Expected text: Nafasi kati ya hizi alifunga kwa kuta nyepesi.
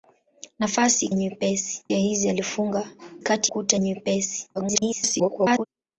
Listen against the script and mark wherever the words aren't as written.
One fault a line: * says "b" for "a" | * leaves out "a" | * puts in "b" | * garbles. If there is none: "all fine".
* says "nyepesi" for "kati"
* says "kati" for "kwa"
* garbles